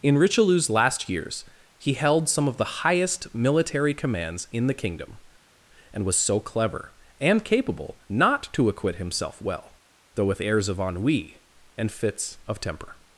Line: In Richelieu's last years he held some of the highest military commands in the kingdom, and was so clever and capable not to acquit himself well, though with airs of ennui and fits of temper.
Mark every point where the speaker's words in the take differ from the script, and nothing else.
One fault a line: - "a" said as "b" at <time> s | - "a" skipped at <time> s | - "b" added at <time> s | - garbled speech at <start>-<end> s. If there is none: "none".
none